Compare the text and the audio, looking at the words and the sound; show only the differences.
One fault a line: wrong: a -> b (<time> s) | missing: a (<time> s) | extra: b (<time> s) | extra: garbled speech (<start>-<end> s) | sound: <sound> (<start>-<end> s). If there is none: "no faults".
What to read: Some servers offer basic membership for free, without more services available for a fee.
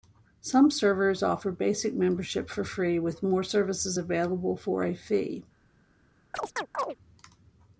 wrong: without -> with (3.0 s)
sound: chirp (6.3-7.0 s)